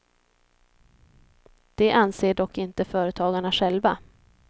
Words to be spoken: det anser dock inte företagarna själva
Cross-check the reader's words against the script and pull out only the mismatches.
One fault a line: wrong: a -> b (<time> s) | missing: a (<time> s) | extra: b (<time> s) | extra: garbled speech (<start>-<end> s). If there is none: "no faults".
no faults